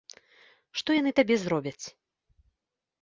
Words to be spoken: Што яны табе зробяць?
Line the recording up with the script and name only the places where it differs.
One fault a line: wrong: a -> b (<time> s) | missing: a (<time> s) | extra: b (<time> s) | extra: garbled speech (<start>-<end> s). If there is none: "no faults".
no faults